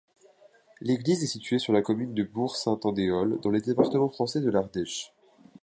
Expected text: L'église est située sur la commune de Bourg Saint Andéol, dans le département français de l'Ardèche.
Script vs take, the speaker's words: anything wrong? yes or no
no